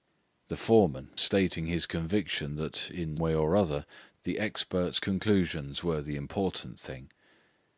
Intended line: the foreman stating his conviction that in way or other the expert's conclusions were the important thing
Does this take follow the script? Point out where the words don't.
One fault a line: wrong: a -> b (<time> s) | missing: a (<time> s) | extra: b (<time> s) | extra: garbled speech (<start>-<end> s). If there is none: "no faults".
no faults